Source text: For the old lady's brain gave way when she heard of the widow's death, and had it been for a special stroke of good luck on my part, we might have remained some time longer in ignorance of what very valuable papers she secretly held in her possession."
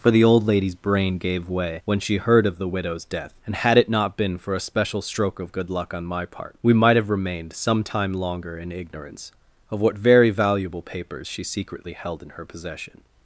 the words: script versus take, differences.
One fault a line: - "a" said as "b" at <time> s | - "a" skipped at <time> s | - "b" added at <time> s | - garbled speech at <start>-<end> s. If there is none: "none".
- "not" added at 3.9 s